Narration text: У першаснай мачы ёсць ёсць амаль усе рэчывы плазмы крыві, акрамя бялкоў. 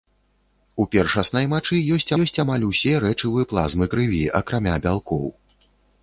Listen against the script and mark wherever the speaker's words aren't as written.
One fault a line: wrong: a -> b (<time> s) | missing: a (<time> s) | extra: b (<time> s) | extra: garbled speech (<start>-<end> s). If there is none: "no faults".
no faults